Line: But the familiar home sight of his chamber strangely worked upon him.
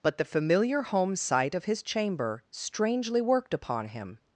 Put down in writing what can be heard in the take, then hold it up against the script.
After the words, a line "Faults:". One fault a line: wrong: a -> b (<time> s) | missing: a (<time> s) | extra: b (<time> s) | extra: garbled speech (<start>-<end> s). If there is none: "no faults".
But the familiar home sight of his chamber strangely worked upon him.
Faults:
no faults